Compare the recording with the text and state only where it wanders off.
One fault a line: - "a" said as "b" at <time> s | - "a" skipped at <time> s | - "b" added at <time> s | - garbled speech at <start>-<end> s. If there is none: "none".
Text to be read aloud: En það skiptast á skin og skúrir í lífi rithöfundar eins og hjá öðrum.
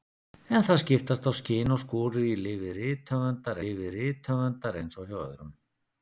- "lífi rithöfundar" added at 3.6 s